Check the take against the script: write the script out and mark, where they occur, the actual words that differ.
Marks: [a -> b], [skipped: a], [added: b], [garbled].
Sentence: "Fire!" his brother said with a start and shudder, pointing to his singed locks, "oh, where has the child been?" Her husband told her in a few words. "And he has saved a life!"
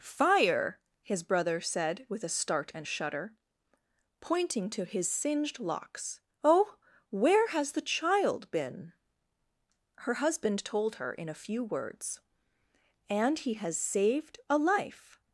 "Fire!" his brother said with a start and shudder, pointing to his singed locks, "oh, where has the child been?" Her husband told her in a few words. "And he has saved a life!"